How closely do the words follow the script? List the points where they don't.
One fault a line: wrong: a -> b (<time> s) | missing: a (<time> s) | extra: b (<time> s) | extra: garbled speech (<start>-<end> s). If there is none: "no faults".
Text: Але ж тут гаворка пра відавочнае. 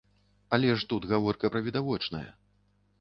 no faults